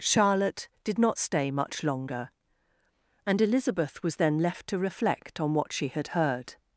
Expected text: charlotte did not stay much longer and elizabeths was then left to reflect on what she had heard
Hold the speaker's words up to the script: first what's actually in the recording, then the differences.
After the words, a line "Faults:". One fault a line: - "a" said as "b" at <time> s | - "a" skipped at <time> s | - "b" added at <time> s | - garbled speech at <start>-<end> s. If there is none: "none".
charlotte did not stay much longer and elizabeth was then left to reflect on what she had heard
Faults:
- "elizabeths" said as "elizabeth" at 3.4 s